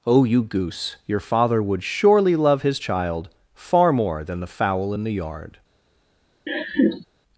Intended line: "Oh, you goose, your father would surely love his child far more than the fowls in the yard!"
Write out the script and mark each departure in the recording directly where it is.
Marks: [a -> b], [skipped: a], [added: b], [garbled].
"Oh, you goose, your father would surely love his child far more than the [fowls -> fowl] in the yard!"